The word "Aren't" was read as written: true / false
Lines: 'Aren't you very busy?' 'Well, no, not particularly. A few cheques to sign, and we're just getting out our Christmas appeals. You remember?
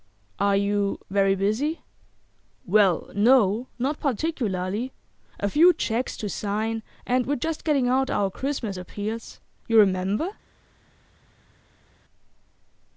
false